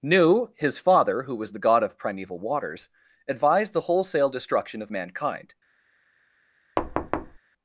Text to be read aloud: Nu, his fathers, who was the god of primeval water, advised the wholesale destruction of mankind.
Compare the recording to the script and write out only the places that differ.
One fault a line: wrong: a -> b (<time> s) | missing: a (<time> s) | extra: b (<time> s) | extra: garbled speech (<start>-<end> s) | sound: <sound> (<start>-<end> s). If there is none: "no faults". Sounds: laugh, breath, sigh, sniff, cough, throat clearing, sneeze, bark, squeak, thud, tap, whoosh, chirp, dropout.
wrong: fathers -> father (0.8 s)
wrong: water -> waters (2.4 s)
sound: thud (6.8-7.4 s)